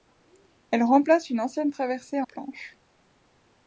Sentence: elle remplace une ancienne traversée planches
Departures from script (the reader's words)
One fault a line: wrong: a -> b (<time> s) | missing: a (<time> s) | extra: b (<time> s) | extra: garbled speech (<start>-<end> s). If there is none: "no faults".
no faults